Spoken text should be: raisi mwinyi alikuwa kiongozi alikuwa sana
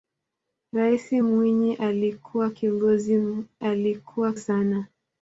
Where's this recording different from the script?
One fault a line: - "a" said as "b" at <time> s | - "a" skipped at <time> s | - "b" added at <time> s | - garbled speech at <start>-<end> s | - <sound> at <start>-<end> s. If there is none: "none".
none